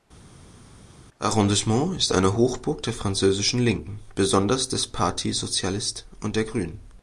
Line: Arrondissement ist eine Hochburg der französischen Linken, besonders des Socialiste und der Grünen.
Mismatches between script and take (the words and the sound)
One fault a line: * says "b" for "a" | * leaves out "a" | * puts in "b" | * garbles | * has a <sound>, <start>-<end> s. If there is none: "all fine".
* puts in "Parti"